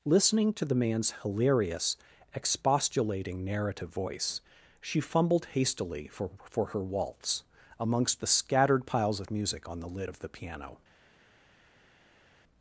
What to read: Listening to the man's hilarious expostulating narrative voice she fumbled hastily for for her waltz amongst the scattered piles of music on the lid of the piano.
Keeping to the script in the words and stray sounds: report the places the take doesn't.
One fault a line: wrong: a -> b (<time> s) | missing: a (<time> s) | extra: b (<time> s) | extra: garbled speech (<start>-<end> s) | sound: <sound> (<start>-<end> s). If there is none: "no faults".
no faults